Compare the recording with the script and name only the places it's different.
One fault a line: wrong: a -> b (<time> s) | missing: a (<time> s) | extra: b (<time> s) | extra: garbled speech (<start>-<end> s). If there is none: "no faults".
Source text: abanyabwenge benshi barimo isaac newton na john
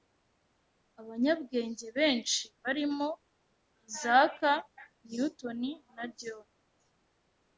no faults